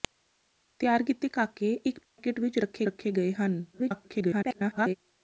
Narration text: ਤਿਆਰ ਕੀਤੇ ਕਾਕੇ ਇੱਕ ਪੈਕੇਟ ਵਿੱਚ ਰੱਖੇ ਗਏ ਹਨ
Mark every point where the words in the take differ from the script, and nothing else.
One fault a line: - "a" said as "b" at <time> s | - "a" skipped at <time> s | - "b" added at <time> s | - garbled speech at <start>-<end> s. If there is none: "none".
- "ਰੱਖੇ" added at 2.8 s
- garbled speech at 3.7-5.0 s